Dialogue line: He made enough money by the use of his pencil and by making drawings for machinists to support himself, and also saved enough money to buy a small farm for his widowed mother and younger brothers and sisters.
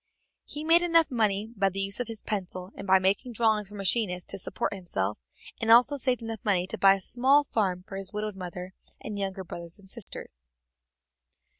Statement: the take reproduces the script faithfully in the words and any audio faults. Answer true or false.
false